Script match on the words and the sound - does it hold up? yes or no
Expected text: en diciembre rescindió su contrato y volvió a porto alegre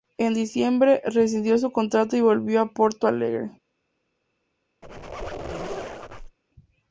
no